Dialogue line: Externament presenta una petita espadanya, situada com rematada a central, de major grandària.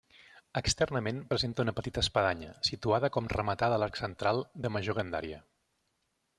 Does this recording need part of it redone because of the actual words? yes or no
yes